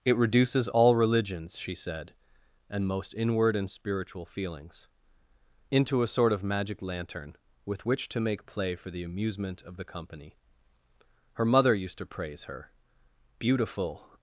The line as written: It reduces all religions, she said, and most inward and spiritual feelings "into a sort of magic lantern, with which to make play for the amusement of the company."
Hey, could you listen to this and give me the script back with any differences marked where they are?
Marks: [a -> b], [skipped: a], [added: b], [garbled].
It reduces all religions, she said, and most inward and spiritual feelings "into a sort of magic lantern, with which to make play for the amusement of the company." [added: Her mother used to praise her beautiful]